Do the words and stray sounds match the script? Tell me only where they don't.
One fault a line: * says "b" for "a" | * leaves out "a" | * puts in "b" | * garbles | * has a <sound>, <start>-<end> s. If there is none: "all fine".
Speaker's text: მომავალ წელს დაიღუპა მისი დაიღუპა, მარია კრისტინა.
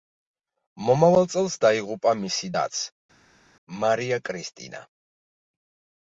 * says "დაც" for "დაიღუპა"